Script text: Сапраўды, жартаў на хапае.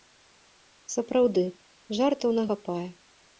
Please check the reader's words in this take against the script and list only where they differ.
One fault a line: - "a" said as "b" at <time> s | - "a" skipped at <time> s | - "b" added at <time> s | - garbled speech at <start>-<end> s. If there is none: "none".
none